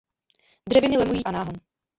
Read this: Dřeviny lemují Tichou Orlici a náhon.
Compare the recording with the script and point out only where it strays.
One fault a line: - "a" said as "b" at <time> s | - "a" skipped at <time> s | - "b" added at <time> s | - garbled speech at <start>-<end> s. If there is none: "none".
- "Tichou Orlici" skipped at 1.2 s